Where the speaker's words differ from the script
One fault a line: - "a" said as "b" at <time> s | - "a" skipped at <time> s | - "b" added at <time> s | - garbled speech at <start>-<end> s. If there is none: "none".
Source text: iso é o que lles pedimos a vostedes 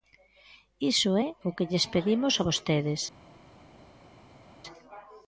none